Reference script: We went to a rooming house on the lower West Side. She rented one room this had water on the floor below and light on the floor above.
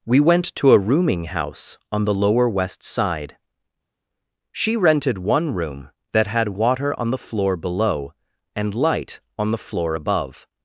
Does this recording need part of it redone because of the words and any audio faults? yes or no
yes